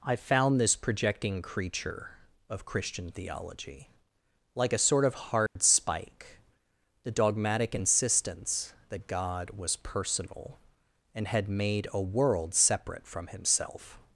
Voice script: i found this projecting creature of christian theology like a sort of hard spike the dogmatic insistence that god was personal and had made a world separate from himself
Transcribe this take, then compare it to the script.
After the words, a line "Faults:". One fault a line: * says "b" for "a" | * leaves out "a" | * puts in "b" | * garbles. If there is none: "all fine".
i found this projecting creature of christian theology like a sort of hard spike the dogmatic insistence that god was personal and had made a world separate from himself
Faults:
all fine